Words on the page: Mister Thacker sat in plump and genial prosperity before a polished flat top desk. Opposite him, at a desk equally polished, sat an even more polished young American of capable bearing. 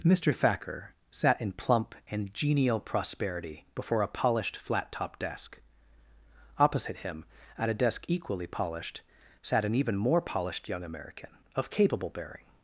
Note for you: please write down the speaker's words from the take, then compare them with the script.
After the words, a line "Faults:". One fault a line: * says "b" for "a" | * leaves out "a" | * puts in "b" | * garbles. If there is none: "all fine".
Mister Thacker sat in plump and genial prosperity before a polished flat top desk. Opposite him, at a desk equally polished, sat an even more polished young American of capable bearing.
Faults:
all fine